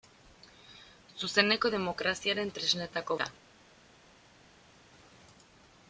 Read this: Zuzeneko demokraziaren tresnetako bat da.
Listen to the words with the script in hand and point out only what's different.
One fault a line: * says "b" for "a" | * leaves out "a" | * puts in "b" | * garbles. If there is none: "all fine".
* leaves out "bat"